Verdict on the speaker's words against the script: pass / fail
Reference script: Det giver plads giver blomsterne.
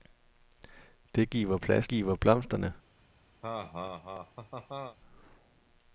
pass